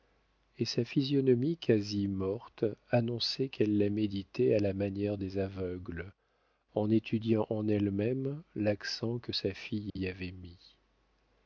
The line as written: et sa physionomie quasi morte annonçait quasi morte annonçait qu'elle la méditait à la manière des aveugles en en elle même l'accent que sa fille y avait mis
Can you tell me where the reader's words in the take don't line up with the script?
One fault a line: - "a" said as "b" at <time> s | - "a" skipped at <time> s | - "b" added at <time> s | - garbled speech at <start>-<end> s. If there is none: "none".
- "quasi morte annonçait" skipped at 3.5 s
- "étudiant" added at 6.9 s